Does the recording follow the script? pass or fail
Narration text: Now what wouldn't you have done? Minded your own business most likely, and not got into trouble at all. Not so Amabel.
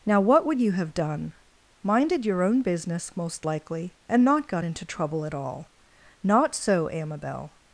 fail